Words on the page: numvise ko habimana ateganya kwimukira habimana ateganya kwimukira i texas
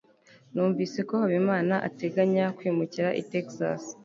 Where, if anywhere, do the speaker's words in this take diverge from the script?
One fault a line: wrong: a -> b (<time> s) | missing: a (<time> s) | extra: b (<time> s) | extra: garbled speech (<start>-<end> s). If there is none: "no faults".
missing: habimana ateganya kwimukira (3.1 s)